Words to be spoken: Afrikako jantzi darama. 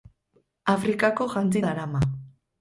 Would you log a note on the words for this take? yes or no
no